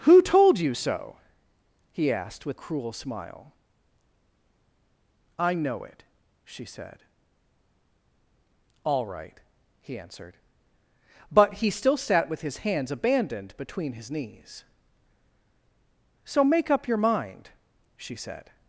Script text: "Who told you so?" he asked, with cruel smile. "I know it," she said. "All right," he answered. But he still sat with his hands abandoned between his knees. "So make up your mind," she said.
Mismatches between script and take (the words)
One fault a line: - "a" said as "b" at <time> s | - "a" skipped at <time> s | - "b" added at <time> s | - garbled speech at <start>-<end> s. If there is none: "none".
none